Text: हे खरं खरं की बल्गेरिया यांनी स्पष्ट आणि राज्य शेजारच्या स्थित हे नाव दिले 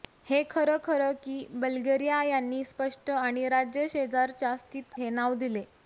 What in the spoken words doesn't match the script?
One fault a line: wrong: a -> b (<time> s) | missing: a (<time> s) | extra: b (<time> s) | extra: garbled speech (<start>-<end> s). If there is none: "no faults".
no faults